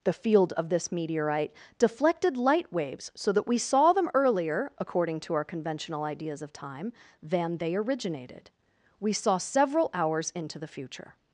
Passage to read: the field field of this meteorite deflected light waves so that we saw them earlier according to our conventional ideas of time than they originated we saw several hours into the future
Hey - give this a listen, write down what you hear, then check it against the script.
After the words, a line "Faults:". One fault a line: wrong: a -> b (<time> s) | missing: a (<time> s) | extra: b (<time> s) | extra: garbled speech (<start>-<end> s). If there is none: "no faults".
the field of this meteorite deflected light waves so that we saw them earlier according to our conventional ideas of time than they originated we saw several hours into the future
Faults:
missing: field (0.5 s)